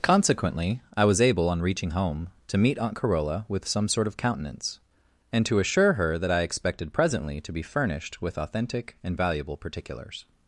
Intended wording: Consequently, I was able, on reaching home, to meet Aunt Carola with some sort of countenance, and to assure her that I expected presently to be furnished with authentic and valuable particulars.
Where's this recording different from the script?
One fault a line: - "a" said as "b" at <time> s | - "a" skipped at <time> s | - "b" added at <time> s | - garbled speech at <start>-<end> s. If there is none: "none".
none